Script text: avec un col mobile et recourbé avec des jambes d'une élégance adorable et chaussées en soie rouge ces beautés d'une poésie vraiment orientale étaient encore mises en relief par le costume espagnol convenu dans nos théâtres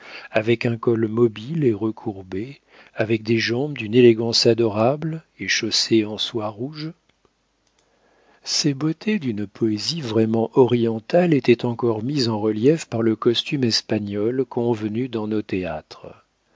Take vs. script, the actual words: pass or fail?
pass